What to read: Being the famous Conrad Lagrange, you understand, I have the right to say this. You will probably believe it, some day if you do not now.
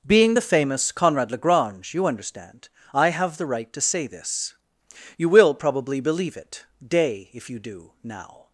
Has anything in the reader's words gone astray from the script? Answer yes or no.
yes